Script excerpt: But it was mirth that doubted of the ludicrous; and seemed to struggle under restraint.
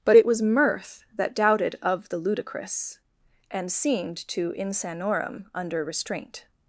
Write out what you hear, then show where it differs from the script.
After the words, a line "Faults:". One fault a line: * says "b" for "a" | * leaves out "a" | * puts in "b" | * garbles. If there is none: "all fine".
But it was mirth that doubted of the ludicrous; and seemed to insanorum under restraint.
Faults:
* says "insanorum" for "struggle"